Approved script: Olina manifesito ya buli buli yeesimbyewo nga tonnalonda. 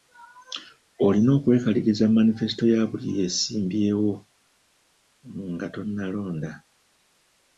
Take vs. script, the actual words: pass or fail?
fail